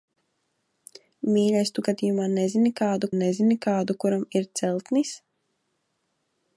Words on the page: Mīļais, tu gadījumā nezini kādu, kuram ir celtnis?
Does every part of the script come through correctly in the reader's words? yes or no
no